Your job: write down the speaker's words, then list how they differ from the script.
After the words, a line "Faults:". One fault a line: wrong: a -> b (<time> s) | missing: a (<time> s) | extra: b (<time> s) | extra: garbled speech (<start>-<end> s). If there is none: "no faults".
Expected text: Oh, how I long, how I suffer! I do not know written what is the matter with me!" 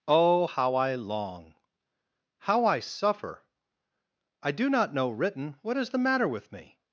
Oh, how I long, how I suffer! I do not know written what is the matter with me!"
Faults:
no faults